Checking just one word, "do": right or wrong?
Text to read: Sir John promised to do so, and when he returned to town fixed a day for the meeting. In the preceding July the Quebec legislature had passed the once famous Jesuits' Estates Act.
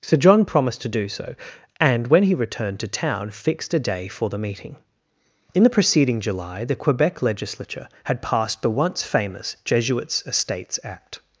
right